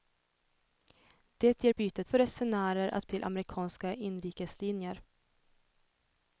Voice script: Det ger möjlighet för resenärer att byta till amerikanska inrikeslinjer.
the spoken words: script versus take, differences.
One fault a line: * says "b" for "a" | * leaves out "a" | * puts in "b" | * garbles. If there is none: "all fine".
* says "byta" for "möjlighet"
* leaves out "byta"